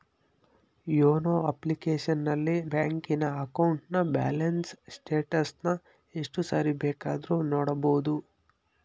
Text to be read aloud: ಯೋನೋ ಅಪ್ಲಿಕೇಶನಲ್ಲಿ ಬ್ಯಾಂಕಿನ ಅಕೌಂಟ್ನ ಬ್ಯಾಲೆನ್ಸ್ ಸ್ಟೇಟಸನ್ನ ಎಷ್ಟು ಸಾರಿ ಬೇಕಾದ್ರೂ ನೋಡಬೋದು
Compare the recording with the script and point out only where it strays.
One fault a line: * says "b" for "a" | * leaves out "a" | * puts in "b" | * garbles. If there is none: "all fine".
all fine